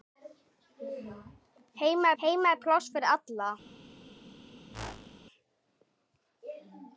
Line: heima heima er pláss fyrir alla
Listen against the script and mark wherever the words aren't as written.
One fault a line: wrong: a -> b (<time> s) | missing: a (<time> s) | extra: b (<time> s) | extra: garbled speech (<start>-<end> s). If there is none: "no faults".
no faults